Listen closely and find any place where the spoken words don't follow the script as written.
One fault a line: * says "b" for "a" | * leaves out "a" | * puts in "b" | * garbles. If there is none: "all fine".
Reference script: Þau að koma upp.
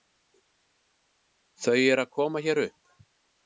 * puts in "eru"
* puts in "hér"